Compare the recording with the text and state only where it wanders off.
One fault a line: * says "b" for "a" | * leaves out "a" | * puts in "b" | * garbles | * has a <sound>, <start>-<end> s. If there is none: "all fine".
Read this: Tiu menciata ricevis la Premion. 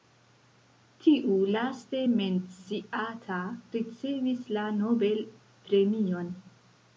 * puts in "laste"
* puts in "Nobel"